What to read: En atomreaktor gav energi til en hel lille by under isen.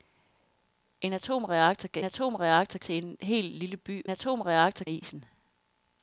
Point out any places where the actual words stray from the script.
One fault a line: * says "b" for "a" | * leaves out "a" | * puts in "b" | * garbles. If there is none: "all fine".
* says "atomreaktor" for "energi"
* says "atomreaktor" for "under"